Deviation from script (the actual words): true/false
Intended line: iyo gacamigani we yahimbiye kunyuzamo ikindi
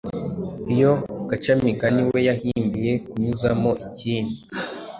false